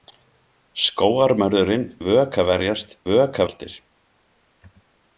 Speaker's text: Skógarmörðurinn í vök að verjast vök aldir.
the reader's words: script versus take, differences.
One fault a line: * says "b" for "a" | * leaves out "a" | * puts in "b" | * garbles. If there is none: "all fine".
all fine